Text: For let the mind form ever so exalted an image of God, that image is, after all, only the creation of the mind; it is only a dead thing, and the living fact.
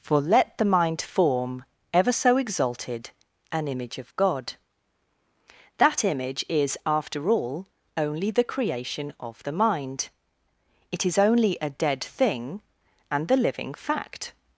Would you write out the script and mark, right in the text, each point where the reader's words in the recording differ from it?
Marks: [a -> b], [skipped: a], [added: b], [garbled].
For let the mind form ever so exalted an image of God, that image is, after all, only the creation of the mind; it is only a dead thing, and the living fact.